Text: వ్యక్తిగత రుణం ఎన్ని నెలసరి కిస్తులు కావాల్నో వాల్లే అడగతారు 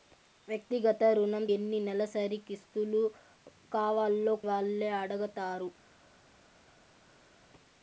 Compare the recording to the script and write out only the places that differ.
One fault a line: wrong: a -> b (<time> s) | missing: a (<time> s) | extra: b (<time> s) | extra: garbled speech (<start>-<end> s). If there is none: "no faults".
no faults